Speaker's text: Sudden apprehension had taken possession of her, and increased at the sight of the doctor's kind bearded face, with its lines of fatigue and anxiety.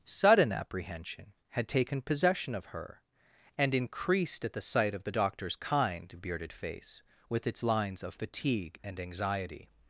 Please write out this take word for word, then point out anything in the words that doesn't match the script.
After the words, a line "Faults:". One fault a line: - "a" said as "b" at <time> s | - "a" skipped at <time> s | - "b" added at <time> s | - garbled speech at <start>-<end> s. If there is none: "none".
Sudden apprehension had taken possession of her, and increased at the sight of the doctor's kind bearded face, with its lines of fatigue and anxiety.
Faults:
none